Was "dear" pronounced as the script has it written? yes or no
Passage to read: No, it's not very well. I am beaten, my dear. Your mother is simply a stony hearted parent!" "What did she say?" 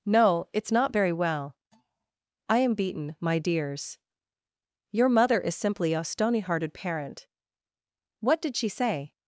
no